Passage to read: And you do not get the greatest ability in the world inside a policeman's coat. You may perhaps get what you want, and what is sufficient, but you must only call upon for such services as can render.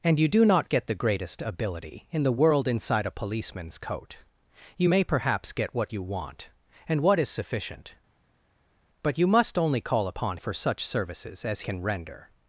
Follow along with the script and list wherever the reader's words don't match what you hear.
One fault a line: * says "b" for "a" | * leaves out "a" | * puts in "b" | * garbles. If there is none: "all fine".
all fine